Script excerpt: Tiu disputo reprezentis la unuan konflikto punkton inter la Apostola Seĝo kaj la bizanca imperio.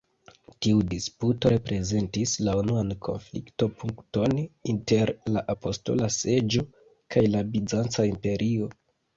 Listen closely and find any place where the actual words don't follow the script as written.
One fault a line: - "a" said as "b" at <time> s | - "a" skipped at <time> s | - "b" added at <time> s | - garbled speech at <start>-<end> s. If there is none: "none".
none